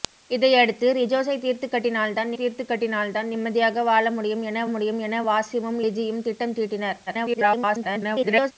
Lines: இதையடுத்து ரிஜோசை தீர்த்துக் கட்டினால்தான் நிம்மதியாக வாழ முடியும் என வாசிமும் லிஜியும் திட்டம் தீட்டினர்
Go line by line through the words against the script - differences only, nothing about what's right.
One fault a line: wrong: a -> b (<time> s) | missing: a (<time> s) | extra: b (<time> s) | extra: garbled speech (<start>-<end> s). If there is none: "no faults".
extra: தீர்த்துக் கட்டினால்தான் (2.3 s)
extra: முடியும் என (4.7 s)
extra: garbled speech (7.1-8.5 s)